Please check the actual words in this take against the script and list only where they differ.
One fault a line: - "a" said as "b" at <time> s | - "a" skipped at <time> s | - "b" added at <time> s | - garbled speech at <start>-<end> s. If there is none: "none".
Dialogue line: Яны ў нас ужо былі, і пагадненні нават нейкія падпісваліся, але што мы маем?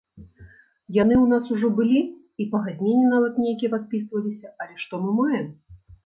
none